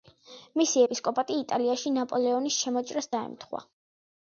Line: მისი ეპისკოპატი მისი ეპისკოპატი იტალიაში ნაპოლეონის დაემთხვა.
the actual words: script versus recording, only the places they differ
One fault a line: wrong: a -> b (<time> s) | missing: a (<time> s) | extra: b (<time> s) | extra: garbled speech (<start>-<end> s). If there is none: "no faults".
missing: მისი ეპისკოპატი (1.4 s)
extra: შემოჭრას (2.6 s)